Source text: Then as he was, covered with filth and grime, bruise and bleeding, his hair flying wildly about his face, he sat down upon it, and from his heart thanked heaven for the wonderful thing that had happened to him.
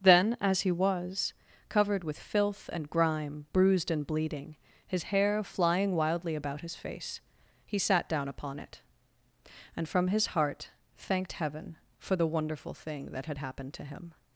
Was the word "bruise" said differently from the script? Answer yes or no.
yes